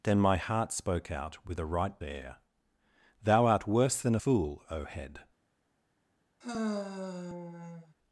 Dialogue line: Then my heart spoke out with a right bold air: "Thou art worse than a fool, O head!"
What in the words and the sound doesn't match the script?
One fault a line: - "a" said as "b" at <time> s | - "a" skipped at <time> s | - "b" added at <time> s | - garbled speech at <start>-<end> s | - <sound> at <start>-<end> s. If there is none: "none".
- "bold" skipped at 2.0 s
- "a" skipped at 4.2 s
- sigh at 6.4-7.9 s